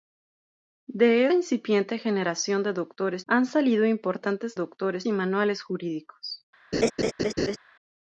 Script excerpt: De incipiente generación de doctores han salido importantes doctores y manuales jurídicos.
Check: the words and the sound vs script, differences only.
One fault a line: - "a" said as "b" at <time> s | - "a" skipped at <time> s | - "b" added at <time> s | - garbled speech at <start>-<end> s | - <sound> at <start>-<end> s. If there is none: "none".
- laugh at 6.7-7.6 s